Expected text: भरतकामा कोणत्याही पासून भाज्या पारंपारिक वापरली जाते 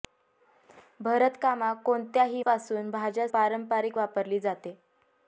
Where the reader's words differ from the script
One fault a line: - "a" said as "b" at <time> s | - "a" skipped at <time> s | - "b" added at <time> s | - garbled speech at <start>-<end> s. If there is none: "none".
none